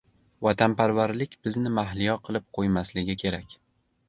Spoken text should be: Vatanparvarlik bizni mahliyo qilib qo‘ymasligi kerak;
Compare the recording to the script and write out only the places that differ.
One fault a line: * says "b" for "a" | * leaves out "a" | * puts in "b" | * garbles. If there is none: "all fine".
all fine